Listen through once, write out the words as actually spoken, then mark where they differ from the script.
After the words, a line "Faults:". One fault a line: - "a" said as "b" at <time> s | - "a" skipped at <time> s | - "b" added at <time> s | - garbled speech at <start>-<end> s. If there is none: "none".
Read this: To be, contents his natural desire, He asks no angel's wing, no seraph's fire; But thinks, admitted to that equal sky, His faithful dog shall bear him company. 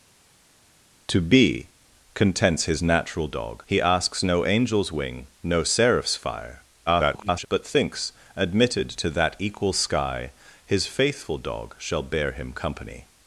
To be, contents his natural dog, He asks no angel's wing, no seraph's fire; [garbled] But thinks, admitted to that equal sky, His faithful dog shall bear him company.
Faults:
- "desire" said as "dog" at 3.3 s
- garbled speech at 6.9-7.5 s